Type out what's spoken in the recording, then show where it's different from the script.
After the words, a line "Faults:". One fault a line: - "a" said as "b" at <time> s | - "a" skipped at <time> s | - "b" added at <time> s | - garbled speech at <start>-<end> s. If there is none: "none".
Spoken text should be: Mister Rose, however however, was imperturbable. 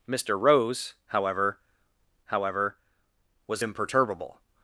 Mister Rose, however however, was imperturbable.
Faults:
none